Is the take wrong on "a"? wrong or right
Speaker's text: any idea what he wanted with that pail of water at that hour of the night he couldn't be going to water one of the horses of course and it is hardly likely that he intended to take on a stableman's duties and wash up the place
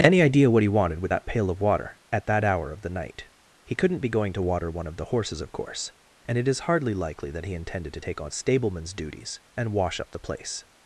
wrong